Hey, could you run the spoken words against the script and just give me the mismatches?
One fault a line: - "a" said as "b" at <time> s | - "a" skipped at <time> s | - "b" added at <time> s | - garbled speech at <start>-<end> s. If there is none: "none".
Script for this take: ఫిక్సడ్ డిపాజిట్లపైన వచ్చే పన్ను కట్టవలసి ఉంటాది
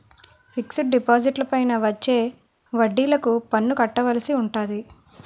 - "వడ్డిలకు" added at 2.7 s